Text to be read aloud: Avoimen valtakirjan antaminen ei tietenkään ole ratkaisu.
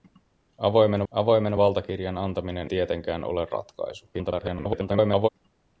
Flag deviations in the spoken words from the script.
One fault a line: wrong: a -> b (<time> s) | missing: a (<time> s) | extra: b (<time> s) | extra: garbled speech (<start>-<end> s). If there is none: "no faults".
extra: avoimen (1.1 s)
missing: ei (2.7 s)
extra: garbled speech (4.1-5.3 s)